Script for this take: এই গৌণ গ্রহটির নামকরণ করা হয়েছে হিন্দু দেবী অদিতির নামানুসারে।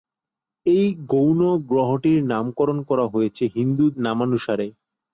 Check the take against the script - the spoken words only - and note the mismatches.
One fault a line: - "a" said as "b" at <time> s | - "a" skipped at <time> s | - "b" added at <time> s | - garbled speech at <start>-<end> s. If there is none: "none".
- "দেবী অদিতির" skipped at 3.9 s